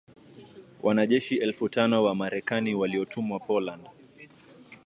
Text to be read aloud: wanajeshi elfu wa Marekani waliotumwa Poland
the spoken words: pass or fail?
fail